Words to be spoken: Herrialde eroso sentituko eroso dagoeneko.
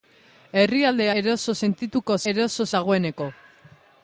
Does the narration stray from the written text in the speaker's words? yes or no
no